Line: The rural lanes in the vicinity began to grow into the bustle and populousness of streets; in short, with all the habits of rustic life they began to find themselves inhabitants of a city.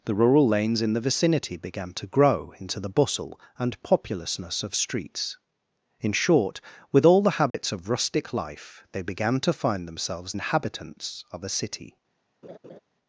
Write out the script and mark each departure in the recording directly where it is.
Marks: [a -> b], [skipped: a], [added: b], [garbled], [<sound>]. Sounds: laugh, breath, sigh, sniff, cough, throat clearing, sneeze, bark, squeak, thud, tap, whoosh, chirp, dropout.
The rural lanes in the vicinity began to grow into the bustle and populousness of streets; in short, with all the habits [dropout] of rustic life they began to find themselves inhabitants of a city. [laugh]